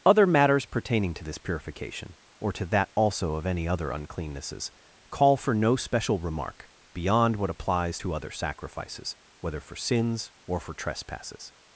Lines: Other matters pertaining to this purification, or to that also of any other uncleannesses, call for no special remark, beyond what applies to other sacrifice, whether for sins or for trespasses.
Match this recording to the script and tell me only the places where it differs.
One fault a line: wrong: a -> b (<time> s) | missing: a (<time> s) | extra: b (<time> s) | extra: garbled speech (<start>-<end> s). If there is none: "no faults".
wrong: sacrifice -> sacrifices (8.3 s)